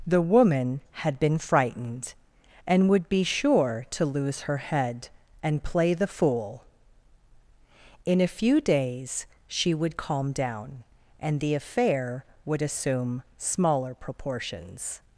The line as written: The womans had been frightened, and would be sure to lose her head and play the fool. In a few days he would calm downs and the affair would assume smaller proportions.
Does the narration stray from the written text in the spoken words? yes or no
yes